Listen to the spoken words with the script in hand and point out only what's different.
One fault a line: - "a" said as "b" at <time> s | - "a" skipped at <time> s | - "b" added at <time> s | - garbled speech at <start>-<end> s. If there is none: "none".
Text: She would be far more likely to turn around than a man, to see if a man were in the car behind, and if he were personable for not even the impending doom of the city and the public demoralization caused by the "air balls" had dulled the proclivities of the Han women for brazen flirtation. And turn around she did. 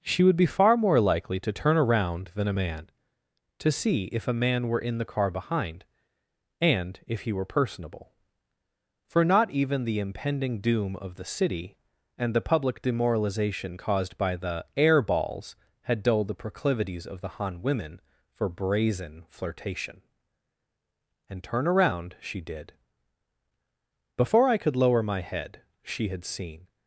- "Before I could lower my head she had seen" added at 24.2 s